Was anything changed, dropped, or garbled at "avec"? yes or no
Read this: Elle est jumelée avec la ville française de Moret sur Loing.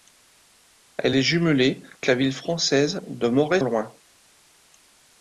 yes